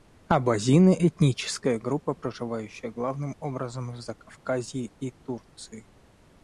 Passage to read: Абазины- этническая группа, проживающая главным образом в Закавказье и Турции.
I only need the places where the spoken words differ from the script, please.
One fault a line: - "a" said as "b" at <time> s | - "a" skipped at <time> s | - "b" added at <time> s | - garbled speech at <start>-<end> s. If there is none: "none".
none